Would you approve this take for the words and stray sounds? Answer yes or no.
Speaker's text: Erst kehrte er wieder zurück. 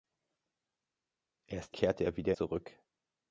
yes